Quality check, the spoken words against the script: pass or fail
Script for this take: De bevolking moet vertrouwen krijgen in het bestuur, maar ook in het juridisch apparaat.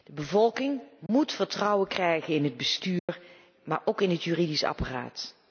pass